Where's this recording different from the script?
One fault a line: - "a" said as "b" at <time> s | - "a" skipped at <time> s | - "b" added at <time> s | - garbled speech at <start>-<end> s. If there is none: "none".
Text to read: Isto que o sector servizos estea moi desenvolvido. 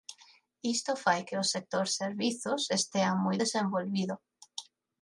- "fai" added at 1.0 s